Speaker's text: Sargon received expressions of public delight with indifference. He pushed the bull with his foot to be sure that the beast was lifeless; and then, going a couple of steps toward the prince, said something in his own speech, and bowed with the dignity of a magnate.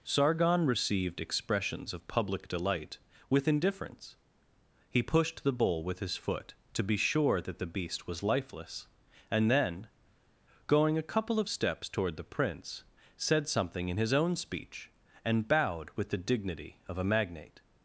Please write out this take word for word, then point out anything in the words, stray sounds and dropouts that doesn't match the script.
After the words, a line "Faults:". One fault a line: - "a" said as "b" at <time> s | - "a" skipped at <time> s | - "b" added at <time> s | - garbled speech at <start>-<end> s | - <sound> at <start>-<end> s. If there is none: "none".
Sargon received expressions of public delight with indifference. He pushed the bull with his foot to be sure that the beast was lifeless; and then, going a couple of steps toward the prince, said something in his own speech, and bowed with the dignity of a magnate.
Faults:
none